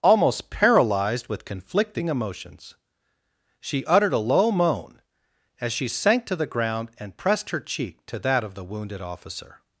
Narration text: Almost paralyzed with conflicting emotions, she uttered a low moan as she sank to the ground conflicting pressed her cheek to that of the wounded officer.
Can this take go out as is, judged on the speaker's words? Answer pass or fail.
fail